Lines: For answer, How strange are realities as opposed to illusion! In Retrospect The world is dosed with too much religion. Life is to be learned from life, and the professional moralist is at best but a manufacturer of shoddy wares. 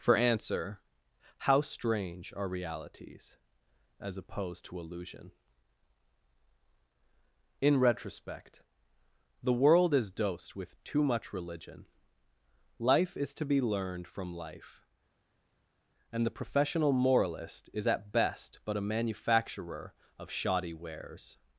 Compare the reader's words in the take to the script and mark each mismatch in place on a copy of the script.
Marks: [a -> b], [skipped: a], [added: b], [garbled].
For answer, How strange are realities as opposed to illusion! In Retrospect The world is dosed with too much religion. Life is to be learned from life, and the professional moralist is at best but a manufacturer of shoddy wares.